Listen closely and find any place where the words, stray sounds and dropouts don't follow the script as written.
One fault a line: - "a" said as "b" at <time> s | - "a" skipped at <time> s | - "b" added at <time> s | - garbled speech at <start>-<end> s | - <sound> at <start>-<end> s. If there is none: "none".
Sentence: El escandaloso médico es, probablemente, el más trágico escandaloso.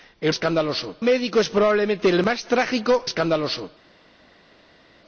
none